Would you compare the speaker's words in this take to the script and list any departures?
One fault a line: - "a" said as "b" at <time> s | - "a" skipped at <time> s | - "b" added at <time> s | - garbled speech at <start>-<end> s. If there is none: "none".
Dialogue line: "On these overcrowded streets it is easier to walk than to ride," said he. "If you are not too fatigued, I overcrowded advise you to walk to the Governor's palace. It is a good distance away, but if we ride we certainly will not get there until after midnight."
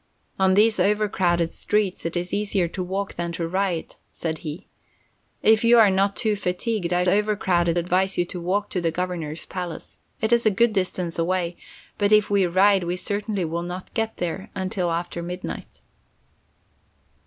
none